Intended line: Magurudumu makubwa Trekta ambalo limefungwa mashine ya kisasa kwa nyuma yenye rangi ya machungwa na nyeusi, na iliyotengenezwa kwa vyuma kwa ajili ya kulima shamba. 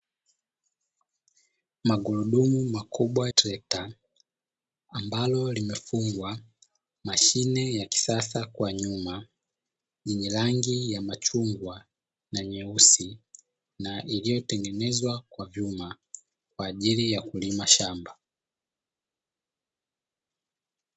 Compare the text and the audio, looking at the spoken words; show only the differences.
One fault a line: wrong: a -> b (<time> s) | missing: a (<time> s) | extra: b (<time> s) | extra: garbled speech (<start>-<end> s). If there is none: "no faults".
no faults